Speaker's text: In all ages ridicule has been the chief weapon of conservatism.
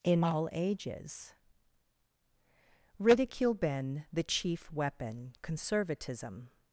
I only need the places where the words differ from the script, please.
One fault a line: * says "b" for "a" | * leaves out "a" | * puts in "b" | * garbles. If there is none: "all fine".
* leaves out "has"
* leaves out "of"